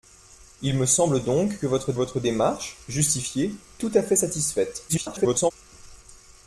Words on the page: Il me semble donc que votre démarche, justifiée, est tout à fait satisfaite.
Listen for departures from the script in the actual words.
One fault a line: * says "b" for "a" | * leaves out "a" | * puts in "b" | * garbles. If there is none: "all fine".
* puts in "votre"
* leaves out "est"
* garbles